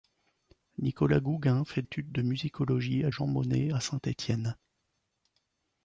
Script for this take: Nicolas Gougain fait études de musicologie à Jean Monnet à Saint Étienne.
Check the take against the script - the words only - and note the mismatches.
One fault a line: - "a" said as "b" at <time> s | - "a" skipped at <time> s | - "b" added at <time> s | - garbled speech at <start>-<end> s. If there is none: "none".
none